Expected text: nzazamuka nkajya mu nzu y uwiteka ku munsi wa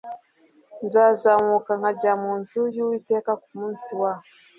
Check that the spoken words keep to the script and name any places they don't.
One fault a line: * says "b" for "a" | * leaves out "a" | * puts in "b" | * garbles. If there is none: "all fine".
all fine